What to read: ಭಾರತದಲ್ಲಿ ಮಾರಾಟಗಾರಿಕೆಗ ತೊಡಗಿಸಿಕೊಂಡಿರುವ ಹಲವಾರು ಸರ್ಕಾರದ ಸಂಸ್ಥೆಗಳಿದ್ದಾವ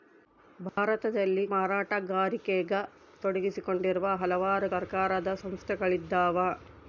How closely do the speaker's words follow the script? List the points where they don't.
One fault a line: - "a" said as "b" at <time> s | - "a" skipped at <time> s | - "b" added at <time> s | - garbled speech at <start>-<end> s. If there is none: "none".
none